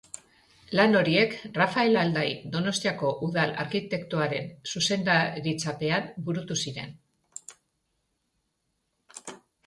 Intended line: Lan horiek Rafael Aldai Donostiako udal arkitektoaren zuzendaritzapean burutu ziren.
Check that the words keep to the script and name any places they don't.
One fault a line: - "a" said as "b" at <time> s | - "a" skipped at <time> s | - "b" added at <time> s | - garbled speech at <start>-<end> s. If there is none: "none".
none